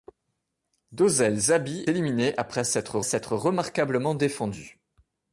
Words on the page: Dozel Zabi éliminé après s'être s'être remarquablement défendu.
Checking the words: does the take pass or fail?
pass